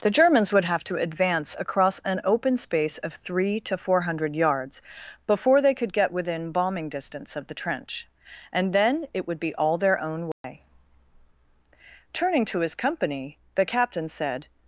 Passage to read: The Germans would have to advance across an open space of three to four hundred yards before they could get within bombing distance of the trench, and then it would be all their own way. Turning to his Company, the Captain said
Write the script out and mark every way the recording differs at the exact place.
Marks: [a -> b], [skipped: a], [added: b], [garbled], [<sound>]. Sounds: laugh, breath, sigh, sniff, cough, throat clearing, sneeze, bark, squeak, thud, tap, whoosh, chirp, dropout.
The Germans would have to advance across an open space of three to four hundred yards before they could get within bombing distance of the trench, and then it would be all their own way. [dropout] Turning to his Company, the Captain said